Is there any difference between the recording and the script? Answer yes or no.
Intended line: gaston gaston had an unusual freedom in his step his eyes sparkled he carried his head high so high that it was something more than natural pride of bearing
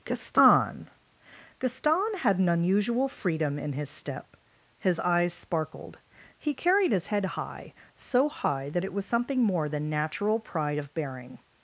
no